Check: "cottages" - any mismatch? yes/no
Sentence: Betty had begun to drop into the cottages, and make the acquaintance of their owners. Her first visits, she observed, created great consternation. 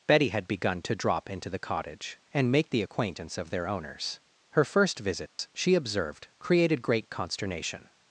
yes